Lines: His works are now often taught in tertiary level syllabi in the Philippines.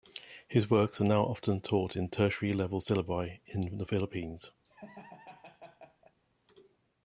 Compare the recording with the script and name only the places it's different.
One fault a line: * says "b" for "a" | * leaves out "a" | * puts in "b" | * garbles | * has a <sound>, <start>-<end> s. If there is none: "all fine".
* has a laugh, 4.6-6.2 s